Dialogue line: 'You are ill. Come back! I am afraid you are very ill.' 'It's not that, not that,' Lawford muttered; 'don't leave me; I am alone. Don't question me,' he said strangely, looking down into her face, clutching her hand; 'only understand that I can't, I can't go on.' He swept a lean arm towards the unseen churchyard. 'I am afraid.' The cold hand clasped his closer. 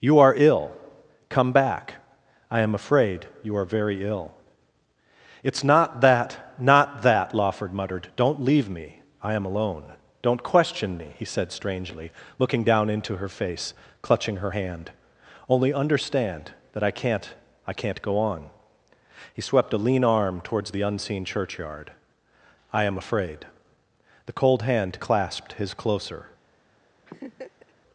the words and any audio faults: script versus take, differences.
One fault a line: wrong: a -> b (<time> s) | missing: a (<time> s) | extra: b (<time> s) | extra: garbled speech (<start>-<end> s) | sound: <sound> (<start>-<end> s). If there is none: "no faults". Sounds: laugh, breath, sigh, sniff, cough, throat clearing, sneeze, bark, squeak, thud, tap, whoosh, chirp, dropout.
sound: laugh (27.1-27.7 s)